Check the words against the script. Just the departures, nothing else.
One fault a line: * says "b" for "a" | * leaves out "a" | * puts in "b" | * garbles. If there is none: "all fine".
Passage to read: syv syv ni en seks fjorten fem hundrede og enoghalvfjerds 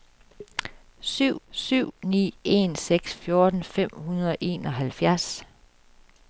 all fine